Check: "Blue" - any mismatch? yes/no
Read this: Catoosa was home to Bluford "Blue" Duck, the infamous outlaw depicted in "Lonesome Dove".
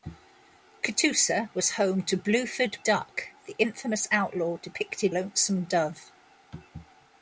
yes